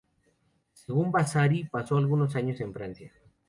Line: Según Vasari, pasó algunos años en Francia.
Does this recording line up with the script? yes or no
yes